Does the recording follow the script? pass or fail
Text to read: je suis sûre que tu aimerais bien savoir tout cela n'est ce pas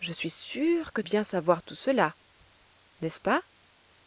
fail